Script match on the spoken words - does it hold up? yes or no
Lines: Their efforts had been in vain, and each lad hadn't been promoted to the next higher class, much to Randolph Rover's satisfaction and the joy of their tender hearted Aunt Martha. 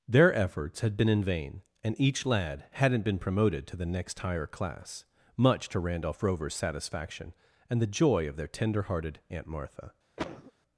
yes